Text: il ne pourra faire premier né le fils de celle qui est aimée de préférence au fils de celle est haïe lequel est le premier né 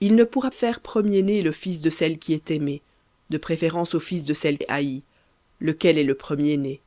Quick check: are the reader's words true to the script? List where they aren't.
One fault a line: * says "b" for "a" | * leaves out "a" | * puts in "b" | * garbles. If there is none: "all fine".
all fine